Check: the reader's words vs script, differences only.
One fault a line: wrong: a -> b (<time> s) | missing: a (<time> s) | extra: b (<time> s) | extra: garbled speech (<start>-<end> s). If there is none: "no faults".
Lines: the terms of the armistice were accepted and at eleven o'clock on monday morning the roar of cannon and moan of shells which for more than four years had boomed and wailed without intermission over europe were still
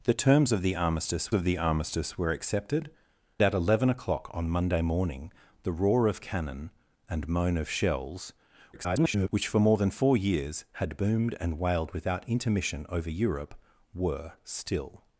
extra: of the armistice (1.3 s)
missing: and (2.9 s)
extra: garbled speech (8.7-9.3 s)